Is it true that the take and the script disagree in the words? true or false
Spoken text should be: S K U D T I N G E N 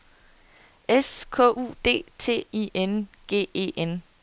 false